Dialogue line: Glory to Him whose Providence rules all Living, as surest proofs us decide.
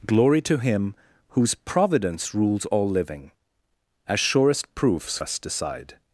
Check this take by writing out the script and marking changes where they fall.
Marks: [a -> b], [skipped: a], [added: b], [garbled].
Glory to Him whose Providence rules all Living, as surest proofs us decide.